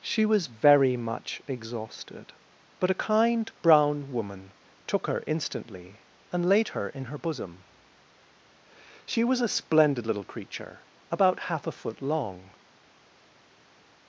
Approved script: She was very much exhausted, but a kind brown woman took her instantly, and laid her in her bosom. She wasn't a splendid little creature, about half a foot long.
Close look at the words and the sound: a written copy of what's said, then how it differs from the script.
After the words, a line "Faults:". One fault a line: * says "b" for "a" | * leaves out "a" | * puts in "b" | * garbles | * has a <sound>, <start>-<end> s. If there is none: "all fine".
She was very much exhausted, but a kind brown woman took her instantly, and laid her in her bosom. She was a splendid little creature, about half a foot long.
Faults:
* says "was" for "wasn't"